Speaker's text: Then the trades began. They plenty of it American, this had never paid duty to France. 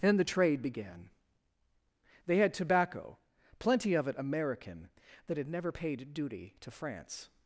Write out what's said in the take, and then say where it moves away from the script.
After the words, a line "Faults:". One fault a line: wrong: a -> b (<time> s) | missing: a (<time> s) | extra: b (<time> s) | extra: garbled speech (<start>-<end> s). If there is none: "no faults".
Then the trade began. They had tobacco, plenty of it American, that had never paid duty to France.
Faults:
wrong: trades -> trade (0.2 s)
extra: had tobacco (2.4 s)
wrong: this -> that (5.3 s)